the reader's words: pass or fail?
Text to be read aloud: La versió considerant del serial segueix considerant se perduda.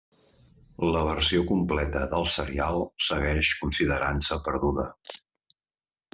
fail